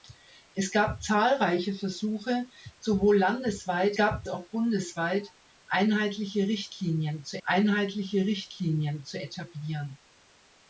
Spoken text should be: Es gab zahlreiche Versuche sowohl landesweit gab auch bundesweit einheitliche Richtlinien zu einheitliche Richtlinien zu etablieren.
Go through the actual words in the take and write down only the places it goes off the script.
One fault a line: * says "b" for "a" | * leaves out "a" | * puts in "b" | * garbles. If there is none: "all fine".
all fine